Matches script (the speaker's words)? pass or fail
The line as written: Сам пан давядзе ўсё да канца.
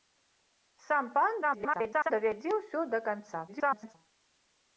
fail